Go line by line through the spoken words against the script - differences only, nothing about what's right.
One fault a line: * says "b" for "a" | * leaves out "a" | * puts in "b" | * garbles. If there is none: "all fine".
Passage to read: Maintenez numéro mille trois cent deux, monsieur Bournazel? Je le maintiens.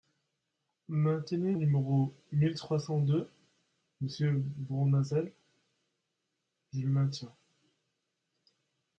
all fine